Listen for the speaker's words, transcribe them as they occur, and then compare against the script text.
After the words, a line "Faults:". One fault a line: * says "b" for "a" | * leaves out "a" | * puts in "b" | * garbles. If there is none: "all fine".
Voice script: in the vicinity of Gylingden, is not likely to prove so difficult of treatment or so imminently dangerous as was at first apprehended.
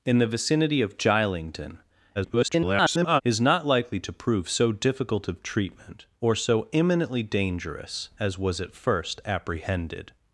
in the vicinity of Gylingden, [garbled] is not likely to prove so difficult of treatment or so imminently dangerous as was at first apprehended.
Faults:
* garbles